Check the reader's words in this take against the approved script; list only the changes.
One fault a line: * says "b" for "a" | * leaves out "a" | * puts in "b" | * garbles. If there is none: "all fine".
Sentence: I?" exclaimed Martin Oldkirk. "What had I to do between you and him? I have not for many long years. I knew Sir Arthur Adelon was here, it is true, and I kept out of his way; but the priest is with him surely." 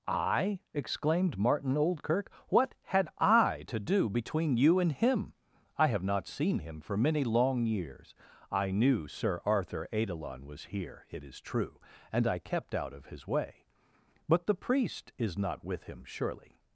* puts in "seen him"
* puts in "not"